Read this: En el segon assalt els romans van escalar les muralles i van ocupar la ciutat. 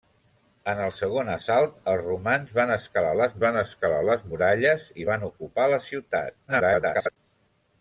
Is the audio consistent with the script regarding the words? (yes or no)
no